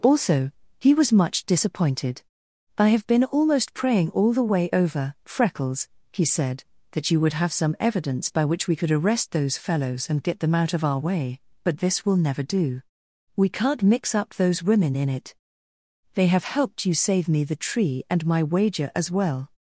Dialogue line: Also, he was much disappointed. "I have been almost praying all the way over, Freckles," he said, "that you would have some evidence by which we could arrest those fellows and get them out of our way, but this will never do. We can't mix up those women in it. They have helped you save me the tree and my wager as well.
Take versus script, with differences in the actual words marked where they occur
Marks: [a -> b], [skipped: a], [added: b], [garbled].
Also, he was much disappointed. "I have been almost praying all the way over, Freckles," he said, "that you would have some evidence by which we could arrest those fellows and get them out of our way, but this will never do. We can't mix up those women in it. They have helped you save me the tree and my wager as well.